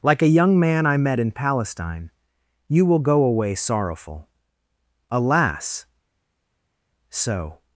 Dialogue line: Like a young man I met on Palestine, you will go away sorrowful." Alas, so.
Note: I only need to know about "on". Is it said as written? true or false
false